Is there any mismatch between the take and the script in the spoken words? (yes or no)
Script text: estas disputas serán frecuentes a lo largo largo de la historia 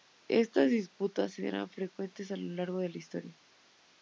yes